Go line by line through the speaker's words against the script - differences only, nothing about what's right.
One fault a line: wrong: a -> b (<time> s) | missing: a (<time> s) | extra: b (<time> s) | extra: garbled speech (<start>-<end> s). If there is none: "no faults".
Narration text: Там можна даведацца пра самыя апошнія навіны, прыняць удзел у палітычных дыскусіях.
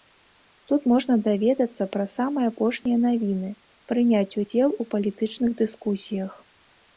wrong: Там -> Тут (0.7 s)